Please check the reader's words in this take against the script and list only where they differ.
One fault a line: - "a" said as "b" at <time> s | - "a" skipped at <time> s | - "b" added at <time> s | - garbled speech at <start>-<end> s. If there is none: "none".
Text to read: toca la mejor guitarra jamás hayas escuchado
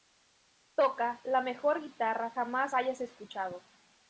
none